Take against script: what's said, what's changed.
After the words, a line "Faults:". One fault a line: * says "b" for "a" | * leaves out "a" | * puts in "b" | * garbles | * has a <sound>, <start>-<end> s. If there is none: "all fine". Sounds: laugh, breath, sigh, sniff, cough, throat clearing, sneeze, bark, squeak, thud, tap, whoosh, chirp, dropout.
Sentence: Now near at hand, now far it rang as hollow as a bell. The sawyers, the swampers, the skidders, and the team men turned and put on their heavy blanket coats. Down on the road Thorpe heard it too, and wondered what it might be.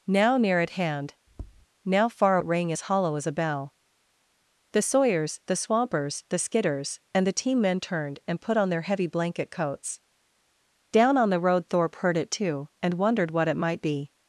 Now near at hand, now far it rang as hollow as a bell. The sawyers, the swampers, the skidders, and the team men turned and put on their heavy blanket coats. Down on the road Thorpe heard it too, and wondered what it might be.
Faults:
* has a tap, 1.3-1.7 s